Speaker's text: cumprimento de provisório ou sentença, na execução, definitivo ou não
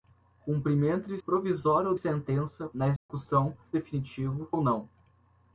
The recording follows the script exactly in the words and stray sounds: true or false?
false